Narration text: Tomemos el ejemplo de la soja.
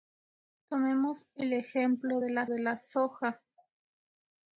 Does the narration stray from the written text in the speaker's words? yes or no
yes